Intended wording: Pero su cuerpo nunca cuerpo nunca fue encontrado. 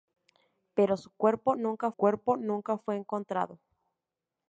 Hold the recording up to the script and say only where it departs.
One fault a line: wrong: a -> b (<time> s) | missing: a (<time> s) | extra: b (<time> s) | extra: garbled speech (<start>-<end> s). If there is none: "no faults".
no faults